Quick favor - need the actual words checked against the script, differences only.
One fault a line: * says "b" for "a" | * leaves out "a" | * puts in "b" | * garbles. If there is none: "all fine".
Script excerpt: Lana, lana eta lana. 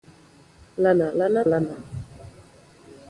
* leaves out "eta"